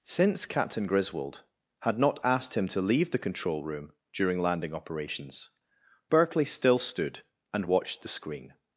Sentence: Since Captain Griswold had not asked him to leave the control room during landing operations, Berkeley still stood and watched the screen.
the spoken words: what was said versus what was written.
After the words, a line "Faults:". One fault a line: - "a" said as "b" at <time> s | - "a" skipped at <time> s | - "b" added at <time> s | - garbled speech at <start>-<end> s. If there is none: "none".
Since Captain Griswold had not asked him to leave the control room during landing operations, Berkeley still stood and watched the screen.
Faults:
none